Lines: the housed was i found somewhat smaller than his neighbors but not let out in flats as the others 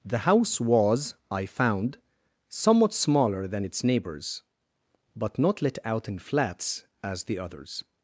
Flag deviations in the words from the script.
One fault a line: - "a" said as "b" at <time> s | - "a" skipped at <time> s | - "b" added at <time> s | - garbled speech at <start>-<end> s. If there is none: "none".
- "housed" said as "house" at 0.2 s
- "his" said as "its" at 3.6 s